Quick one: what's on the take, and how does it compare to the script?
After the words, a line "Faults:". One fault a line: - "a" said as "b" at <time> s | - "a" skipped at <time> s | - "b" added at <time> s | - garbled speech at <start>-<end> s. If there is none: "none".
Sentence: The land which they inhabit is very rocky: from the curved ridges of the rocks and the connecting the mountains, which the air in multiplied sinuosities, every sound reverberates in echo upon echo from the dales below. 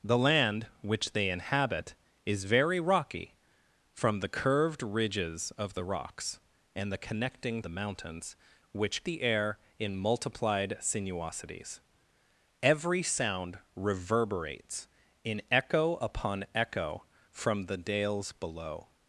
The land which they inhabit is very rocky: from the curved ridges of the rocks and the connecting the mountains, which the air in multiplied sinuosities, every sound reverberates in echo upon echo from the dales below.
Faults:
none